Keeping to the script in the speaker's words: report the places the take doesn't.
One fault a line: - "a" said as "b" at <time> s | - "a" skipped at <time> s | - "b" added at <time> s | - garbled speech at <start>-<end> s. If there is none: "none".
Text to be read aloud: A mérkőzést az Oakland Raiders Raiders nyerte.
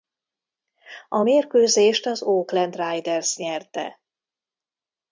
- "Raiders" skipped at 3.4 s